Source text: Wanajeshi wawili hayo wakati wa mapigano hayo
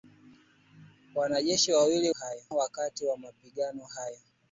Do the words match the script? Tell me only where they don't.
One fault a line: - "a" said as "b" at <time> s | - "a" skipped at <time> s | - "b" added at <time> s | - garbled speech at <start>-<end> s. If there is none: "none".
none